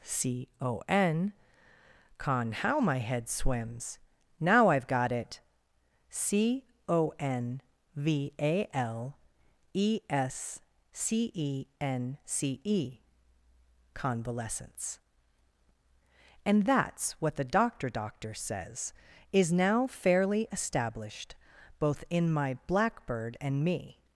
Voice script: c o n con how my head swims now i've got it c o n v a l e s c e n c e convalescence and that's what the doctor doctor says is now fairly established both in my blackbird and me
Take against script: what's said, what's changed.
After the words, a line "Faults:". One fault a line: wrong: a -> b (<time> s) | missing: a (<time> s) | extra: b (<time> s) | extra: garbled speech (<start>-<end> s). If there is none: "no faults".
c o n con how my head swims now i've got it c o n v a l e s c e n c e convalescence and that's what the doctor doctor says is now fairly established both in my blackbird and me
Faults:
no faults